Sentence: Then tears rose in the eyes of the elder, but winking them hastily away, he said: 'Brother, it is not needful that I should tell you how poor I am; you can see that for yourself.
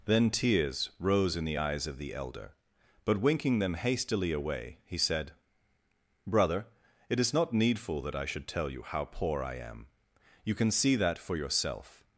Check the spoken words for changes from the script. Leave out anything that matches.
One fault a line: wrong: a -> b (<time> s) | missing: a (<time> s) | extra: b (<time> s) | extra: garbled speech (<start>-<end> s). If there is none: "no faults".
no faults